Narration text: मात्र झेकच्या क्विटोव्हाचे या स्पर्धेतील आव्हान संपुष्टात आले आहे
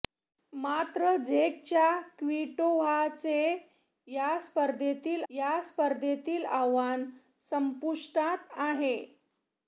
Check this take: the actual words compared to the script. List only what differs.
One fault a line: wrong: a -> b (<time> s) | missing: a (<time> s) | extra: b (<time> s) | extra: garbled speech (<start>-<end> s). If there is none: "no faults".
extra: या स्पर्धेतील (5.3 s)
missing: आले (8.5 s)